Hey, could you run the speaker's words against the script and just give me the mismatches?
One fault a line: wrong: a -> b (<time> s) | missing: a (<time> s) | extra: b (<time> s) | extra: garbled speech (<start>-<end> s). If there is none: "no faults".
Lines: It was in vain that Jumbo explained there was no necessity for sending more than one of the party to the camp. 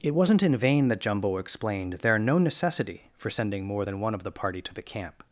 wrong: was -> wasn't (0.1 s)
missing: was (2.2 s)